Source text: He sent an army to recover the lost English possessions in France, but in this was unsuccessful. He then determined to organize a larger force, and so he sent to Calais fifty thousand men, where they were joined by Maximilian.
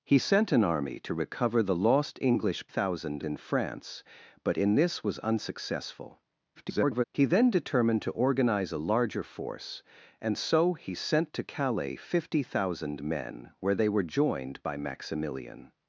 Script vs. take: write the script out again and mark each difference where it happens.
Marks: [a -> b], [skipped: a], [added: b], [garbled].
He sent an army to recover the lost English [possessions -> thousand] in France, but in this was unsuccessful. [garbled] He then determined to organize a larger force, and so he sent to Calais fifty thousand men, where they were joined by Maximilian.